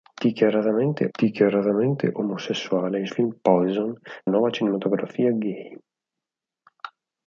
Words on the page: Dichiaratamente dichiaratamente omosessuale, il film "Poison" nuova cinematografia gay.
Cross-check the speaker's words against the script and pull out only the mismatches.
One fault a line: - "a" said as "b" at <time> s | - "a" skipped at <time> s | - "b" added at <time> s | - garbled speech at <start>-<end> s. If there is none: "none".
none